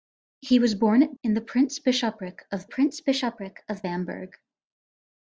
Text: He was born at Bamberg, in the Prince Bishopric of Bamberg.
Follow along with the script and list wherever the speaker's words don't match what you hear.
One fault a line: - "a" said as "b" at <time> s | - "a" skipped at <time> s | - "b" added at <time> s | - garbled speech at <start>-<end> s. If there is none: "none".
- "Bamberg" skipped at 1.1 s
- "Prince Bishopric of" added at 2.7 s